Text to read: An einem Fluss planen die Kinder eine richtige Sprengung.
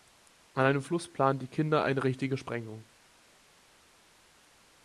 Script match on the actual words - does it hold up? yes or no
yes